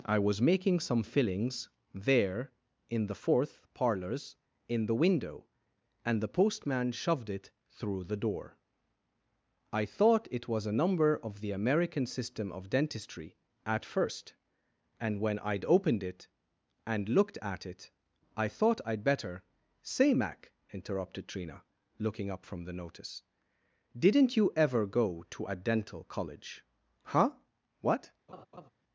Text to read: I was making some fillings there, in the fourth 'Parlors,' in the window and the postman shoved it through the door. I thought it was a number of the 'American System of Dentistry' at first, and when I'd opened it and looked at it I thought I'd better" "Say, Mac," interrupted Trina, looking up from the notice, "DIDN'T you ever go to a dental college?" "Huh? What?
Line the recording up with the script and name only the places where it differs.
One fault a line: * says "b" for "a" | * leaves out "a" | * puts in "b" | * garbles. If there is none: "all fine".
all fine